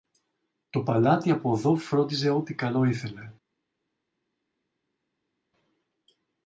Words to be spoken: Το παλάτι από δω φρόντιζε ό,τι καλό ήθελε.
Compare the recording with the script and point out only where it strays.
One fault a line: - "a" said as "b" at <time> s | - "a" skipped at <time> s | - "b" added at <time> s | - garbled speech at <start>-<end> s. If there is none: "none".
none